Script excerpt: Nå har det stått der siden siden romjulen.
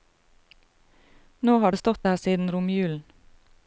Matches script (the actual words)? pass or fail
fail